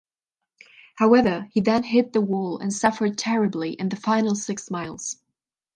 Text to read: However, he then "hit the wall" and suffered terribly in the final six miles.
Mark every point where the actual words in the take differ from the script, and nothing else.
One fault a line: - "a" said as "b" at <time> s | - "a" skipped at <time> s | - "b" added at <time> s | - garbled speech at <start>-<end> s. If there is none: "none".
none